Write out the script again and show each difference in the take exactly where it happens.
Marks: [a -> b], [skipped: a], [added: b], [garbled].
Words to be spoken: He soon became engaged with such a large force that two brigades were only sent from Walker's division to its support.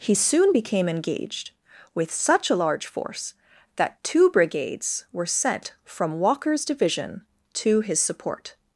He soon became engaged with such a large force that two brigades were [skipped: only] sent from Walker's division to [its -> his] support.